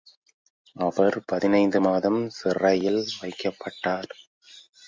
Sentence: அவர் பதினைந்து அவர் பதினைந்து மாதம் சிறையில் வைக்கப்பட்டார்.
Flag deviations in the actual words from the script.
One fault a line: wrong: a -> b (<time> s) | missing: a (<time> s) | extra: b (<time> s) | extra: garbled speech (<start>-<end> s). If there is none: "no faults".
missing: அவர் பதினைந்து (1.8 s)